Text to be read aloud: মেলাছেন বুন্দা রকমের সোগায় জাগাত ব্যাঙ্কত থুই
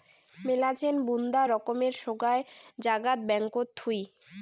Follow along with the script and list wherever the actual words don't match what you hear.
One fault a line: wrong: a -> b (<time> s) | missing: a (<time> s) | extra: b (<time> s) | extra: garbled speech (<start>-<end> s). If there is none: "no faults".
no faults